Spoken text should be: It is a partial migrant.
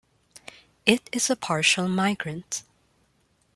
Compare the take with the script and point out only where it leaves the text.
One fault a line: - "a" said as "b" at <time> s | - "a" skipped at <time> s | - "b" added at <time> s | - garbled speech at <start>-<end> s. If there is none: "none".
none